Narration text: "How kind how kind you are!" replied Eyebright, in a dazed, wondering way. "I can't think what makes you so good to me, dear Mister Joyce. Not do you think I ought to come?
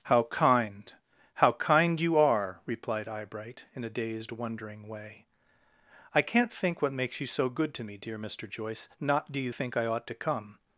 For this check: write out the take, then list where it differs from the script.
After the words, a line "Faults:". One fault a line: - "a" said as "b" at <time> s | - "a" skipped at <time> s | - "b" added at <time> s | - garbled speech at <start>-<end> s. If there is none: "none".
"How kind how kind you are!" replied Eyebright, in a dazed, wondering way. "I can't think what makes you so good to me, dear Mister Joyce. Not do you think I ought to come?
Faults:
none